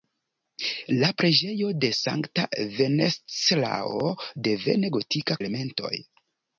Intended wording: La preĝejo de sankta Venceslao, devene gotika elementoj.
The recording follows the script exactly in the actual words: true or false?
true